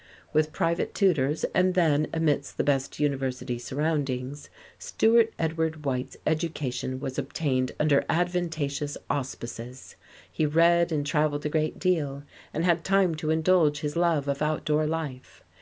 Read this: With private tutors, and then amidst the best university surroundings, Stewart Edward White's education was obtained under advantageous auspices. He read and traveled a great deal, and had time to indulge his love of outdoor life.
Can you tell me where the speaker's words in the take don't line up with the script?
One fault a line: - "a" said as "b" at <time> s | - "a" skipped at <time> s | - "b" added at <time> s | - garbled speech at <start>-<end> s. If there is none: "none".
none